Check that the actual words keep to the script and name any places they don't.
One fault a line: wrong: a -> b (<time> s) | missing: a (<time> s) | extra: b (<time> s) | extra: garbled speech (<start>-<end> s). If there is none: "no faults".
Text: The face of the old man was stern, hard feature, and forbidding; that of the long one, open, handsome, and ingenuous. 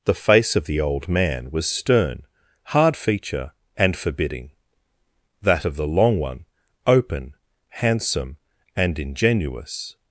no faults